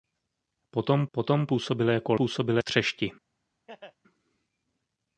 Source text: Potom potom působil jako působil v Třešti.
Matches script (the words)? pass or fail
pass